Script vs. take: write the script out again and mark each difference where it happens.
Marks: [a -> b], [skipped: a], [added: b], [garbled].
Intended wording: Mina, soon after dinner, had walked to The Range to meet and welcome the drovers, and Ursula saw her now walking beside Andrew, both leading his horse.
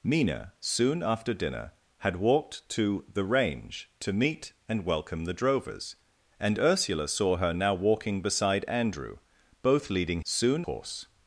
Mina, soon after dinner, had walked to The Range to meet and welcome the drovers, and Ursula saw her now walking beside Andrew, both leading [his -> soon] horse.